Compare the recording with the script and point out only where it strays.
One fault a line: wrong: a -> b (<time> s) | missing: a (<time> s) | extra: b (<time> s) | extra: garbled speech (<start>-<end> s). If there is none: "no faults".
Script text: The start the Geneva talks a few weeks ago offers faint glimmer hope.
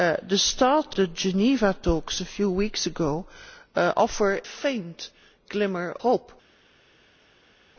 no faults